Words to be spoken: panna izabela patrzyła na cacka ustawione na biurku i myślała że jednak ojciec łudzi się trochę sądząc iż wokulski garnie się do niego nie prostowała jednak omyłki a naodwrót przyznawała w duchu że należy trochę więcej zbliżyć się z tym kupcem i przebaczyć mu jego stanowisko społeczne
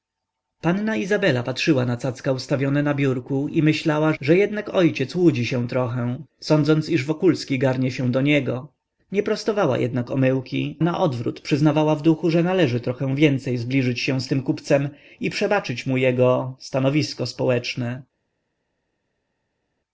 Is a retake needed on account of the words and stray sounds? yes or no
yes